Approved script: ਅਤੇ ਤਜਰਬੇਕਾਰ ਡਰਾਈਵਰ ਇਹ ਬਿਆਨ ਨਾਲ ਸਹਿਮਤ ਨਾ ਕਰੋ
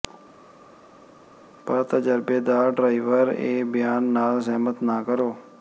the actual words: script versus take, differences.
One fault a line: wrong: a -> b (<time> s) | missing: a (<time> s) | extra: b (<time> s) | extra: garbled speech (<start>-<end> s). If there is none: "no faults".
wrong: ਅਤੇ -> ਪਰ (1.7 s)